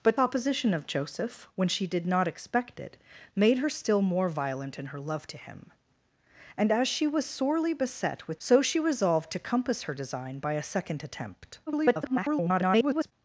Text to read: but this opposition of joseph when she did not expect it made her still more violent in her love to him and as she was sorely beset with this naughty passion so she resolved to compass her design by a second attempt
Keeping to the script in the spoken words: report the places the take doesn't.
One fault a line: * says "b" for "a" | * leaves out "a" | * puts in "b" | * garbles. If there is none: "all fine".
* leaves out "this"
* leaves out "this naughty passion"
* garbles